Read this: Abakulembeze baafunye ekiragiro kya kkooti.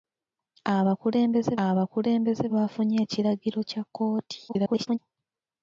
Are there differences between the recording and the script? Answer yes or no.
yes